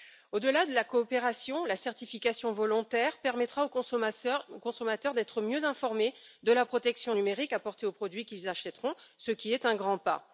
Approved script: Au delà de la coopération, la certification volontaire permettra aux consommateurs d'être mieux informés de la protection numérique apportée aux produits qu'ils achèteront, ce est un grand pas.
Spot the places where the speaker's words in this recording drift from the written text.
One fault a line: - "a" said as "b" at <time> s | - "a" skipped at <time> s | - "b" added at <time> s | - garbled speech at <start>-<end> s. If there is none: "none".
- "qui" added at 9.3 s